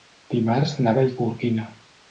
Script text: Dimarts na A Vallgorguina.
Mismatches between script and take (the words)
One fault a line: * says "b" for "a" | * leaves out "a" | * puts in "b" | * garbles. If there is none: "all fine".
all fine